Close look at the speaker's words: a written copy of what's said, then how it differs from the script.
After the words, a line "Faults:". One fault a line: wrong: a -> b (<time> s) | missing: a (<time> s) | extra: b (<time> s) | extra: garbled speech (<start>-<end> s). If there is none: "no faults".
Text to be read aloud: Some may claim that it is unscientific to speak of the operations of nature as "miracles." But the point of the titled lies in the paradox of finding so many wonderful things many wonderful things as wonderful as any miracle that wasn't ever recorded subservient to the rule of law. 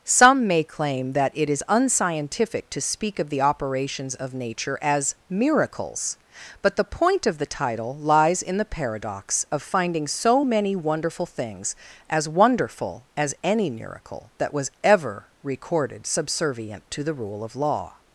Some may claim that it is unscientific to speak of the operations of nature as "miracles." But the point of the title lies in the paradox of finding so many wonderful things as wonderful as any miracle that was ever recorded subservient to the rule of law.
Faults:
wrong: titled -> title (7.5 s)
missing: many wonderful things (11.8 s)
wrong: wasn't -> was (14.5 s)